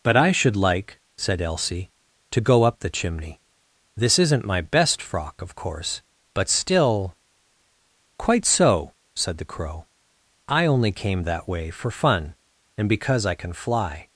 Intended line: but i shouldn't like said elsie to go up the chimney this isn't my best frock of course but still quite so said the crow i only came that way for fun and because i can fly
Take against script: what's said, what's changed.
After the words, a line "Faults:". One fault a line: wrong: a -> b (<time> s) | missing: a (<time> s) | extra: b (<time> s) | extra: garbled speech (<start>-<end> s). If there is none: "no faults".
but i should like said elsie to go up the chimney this isn't my best frock of course but still quite so said the crow i only came that way for fun and because i can fly
Faults:
wrong: shouldn't -> should (0.3 s)